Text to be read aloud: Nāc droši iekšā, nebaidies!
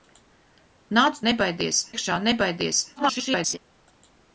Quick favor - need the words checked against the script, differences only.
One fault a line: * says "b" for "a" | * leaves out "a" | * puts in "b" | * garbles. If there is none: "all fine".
* says "nebaidies" for "droši"
* garbles